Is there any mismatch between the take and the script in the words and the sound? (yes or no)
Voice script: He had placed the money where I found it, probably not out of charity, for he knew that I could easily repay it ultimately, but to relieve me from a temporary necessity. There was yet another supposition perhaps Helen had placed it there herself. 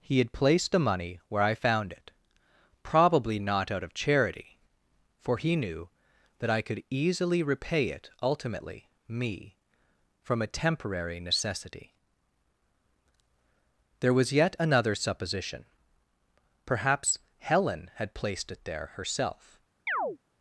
yes